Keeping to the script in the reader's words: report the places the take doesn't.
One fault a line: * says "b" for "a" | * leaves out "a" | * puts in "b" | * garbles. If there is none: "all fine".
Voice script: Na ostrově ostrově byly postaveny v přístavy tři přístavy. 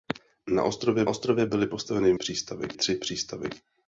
all fine